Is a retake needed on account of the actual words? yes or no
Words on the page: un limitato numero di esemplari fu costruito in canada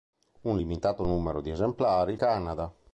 yes